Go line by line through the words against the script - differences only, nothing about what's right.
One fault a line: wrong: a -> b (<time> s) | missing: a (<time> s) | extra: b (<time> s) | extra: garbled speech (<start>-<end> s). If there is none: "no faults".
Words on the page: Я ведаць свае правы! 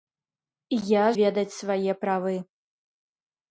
no faults